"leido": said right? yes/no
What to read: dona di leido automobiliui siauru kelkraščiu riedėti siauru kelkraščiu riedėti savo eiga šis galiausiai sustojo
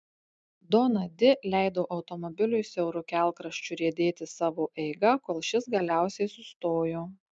yes